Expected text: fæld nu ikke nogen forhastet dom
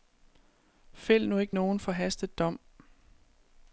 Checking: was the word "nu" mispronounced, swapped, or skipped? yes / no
no